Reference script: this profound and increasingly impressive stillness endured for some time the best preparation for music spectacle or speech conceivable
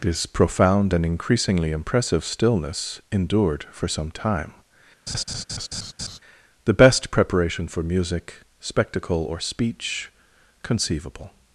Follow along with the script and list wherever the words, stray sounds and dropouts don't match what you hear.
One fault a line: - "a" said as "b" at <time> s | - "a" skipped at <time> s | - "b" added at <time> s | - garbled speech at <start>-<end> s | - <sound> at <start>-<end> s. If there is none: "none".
- laugh at 5.1-6.2 s